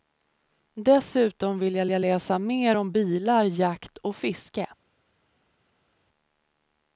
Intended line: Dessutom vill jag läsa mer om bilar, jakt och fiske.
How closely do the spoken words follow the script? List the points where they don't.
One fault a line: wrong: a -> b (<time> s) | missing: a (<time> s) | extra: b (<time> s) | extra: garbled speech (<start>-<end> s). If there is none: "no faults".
extra: jag (1.9 s)